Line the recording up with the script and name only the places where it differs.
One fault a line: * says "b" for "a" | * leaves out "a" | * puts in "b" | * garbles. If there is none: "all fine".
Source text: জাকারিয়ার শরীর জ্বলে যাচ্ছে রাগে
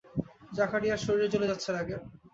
all fine